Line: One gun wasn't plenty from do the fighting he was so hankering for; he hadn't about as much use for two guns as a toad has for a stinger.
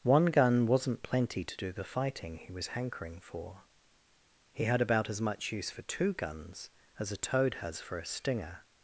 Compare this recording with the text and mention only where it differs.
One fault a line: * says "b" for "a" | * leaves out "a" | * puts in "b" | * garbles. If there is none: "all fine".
* says "to" for "from"
* leaves out "so"
* says "had" for "hadn't"